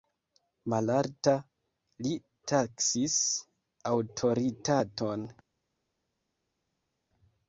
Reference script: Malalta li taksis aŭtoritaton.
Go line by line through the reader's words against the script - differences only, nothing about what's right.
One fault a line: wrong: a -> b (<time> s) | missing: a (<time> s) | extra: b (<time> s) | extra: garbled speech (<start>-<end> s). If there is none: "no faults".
no faults